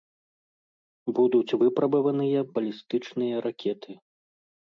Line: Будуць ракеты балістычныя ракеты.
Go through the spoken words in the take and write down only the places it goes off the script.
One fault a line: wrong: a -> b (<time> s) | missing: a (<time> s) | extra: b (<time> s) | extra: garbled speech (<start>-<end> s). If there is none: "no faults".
wrong: ракеты -> выпрабаваныя (1.6 s)